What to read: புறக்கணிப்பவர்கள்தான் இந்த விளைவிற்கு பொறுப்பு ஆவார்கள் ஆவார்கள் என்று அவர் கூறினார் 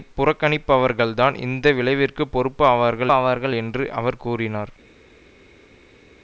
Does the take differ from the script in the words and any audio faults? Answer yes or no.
no